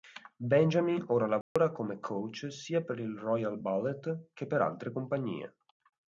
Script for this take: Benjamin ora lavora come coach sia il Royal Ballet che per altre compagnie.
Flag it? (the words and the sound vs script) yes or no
yes